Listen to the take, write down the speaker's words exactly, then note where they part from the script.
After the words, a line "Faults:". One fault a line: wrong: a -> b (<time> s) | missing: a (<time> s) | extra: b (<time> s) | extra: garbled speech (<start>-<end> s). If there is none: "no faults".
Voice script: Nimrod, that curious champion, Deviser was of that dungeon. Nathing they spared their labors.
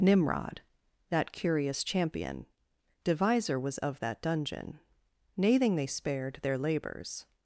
Nimrod, that curious champion, Deviser was of that dungeon. Nathing they spared their labors.
Faults:
no faults